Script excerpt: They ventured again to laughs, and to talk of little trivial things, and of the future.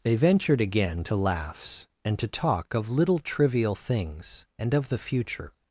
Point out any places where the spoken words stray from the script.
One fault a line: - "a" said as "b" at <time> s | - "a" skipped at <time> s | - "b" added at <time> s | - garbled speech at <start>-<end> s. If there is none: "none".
none